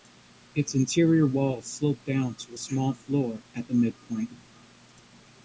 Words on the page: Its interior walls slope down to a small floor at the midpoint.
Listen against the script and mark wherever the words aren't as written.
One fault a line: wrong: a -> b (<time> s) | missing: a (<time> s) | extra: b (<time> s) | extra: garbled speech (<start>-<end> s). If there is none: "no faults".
no faults